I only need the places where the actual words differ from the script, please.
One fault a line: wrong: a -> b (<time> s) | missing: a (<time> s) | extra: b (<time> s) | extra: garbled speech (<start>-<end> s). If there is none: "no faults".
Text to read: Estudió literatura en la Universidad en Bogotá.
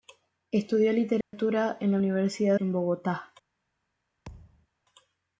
no faults